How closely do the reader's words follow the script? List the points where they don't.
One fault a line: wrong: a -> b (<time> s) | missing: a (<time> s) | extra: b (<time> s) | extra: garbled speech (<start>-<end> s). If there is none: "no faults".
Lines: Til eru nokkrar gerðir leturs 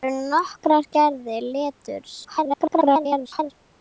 extra: garbled speech (2.2-3.5 s)